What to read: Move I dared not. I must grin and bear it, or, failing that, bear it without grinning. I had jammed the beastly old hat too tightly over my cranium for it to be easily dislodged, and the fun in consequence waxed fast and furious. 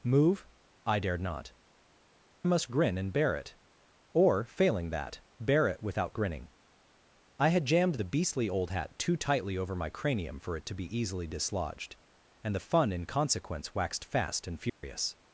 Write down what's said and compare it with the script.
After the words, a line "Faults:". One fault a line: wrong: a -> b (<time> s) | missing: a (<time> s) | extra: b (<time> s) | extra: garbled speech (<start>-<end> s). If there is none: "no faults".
Move I dared not. must grin and bear it, or, failing that, bear it without grinning. I had jammed the beastly old hat too tightly over my cranium for it to be easily dislodged, and the fun in consequence waxed fast and furious.
Faults:
missing: I (1.5 s)